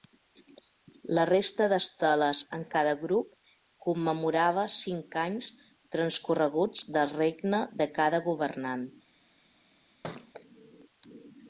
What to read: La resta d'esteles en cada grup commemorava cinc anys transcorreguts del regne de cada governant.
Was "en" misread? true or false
false